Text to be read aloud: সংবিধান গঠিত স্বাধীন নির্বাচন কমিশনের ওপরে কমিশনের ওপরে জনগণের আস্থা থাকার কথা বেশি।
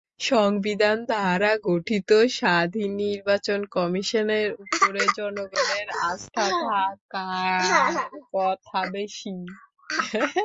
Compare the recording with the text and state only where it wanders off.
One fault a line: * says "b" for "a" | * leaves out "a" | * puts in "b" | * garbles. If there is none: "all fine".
* puts in "দ্বারা"
* leaves out "কমিশনের ওপরে"